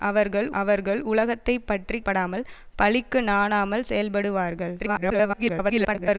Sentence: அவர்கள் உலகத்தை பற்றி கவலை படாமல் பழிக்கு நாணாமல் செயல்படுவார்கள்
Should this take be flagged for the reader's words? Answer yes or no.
yes